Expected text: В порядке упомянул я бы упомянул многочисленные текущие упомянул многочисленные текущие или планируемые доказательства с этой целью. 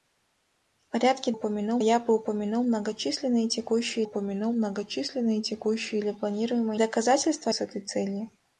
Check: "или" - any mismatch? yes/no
no